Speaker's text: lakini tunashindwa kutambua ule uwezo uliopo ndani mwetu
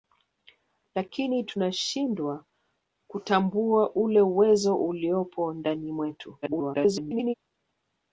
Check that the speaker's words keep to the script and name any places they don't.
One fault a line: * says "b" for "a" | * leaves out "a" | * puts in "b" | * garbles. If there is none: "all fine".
* garbles